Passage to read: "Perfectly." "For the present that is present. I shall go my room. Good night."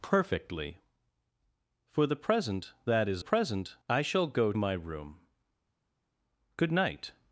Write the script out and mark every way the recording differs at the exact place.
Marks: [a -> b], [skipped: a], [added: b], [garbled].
"Perfectly." "For the present that is present. I shall go my room. Good night."